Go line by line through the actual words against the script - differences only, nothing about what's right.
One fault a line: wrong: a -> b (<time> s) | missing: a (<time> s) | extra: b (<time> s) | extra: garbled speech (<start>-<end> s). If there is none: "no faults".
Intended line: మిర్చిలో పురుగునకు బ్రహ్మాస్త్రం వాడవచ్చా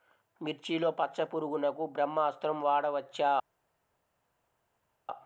extra: పచ్చ (0.9 s)